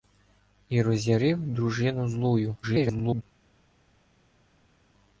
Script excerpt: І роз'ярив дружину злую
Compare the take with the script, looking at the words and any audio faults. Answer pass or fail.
fail